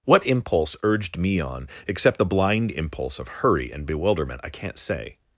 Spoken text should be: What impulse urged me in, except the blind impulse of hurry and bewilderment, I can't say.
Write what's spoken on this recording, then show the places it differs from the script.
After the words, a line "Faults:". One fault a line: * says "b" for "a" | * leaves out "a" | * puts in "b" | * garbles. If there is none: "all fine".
What impulse urged me on, except the blind impulse of hurry and bewilderment, I can't say.
Faults:
* says "on" for "in"